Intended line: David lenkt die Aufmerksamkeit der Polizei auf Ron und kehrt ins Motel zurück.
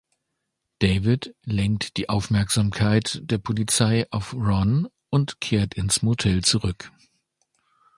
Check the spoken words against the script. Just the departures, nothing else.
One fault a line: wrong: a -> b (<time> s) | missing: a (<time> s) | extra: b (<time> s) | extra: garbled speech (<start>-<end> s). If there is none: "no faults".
no faults